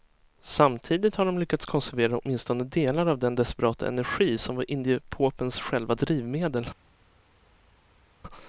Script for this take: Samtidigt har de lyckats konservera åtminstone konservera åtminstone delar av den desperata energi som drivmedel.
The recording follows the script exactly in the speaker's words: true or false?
false